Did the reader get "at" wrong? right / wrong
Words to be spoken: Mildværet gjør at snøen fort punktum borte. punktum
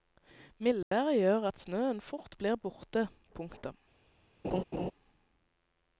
right